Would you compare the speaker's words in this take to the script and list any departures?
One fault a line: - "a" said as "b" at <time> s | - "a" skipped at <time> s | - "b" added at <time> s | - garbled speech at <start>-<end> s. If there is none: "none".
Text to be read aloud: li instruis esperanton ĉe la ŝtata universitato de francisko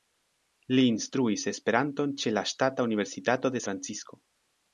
none